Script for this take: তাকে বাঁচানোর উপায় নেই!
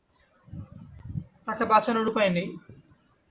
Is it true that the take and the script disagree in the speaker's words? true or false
false